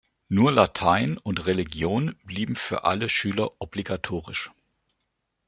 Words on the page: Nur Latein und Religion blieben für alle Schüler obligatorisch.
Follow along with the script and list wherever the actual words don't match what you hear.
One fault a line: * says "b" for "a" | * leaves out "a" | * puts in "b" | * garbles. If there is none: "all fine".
all fine